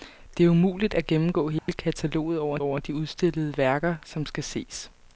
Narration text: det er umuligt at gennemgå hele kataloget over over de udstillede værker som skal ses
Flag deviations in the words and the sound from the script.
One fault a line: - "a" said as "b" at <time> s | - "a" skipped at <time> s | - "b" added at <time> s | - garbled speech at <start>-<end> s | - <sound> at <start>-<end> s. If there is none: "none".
- dropout at 1.6-1.7 s